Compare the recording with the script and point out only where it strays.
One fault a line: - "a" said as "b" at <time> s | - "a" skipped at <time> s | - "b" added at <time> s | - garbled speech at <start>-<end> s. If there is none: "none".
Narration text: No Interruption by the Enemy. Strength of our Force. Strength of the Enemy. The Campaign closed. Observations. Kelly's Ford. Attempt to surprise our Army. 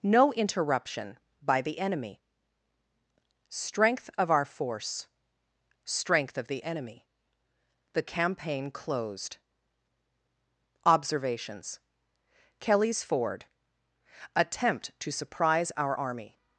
none